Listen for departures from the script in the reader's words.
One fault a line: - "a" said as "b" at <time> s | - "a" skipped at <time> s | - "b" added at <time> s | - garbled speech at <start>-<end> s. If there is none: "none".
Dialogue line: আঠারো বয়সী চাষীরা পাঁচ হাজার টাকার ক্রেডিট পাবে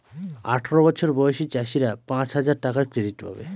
- "বছর" added at 0.9 s